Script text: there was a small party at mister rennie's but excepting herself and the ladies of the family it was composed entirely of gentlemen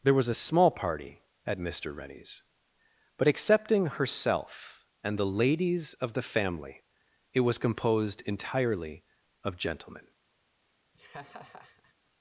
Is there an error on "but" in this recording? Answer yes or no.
no